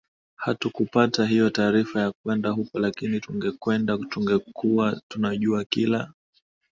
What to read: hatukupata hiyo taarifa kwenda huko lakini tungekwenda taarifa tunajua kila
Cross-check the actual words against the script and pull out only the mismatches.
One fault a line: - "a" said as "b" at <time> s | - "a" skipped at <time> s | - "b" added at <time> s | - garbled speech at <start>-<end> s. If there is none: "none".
- "ya" added at 2.0 s
- "taarifa" said as "tungekuwa" at 4.1 s